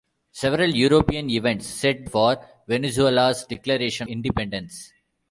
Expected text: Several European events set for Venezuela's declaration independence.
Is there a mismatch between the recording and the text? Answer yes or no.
no